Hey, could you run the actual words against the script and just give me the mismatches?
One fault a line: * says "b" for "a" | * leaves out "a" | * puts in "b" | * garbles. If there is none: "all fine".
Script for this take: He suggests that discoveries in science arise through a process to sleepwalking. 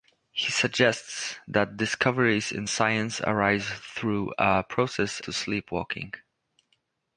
all fine